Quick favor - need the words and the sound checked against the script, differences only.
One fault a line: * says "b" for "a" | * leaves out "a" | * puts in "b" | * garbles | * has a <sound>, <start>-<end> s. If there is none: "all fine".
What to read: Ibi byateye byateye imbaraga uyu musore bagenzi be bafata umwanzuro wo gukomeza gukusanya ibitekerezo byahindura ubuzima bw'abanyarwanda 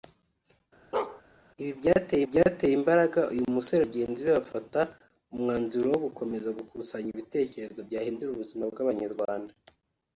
* has a bark, 0.9-1.2 s